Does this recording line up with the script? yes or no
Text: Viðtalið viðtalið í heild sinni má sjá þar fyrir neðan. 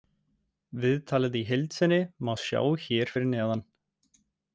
no